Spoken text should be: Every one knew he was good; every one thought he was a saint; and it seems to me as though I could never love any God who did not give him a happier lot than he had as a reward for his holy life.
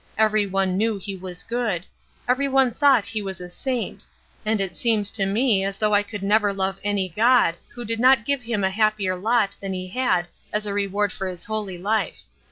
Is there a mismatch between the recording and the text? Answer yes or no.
no